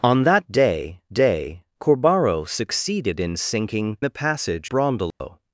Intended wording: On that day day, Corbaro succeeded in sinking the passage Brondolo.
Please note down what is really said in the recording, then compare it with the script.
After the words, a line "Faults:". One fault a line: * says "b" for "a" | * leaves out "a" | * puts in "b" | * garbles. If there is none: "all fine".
On that day day, Corbaro succeeded in sinking the passage Brondolo.
Faults:
all fine